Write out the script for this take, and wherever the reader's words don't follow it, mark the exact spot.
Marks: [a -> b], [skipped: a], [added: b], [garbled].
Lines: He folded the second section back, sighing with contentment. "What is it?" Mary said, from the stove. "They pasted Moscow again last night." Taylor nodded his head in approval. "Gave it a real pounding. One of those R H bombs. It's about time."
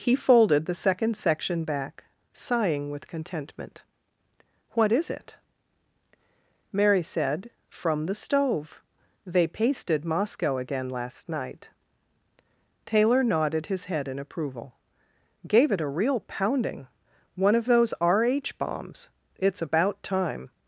He folded the second section back, sighing with contentment. "What is it?" Mary said, from the stove. "They pasted Moscow again last night." Taylor nodded his head in approval. "Gave it a real pounding. One of those R H bombs. It's about time."